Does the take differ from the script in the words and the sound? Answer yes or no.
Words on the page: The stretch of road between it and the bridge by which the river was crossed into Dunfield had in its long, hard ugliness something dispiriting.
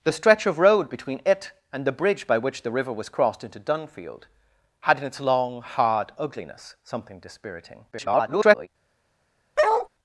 yes